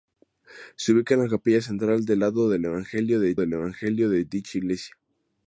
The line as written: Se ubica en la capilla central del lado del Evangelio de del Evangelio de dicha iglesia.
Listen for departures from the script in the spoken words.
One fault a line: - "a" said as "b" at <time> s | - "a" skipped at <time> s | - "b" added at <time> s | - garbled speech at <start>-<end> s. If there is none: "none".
none